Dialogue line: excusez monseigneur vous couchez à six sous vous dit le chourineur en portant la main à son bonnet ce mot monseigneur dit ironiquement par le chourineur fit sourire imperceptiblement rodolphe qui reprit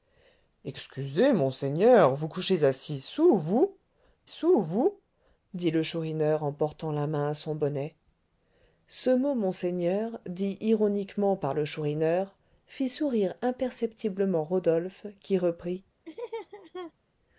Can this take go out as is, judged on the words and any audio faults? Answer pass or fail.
fail